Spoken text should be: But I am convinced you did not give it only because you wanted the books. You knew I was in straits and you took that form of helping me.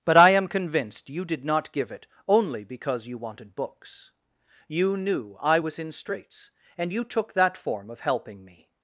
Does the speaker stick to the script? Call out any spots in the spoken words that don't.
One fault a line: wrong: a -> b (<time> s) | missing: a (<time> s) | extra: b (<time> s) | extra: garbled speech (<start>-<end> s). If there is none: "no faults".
missing: the (3.5 s)